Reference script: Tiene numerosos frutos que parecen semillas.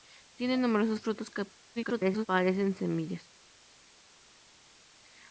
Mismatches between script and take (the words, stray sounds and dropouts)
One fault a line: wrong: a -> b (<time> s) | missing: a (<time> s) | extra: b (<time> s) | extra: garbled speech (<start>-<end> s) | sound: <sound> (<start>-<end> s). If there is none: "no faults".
extra: garbled speech (1.8-2.3 s)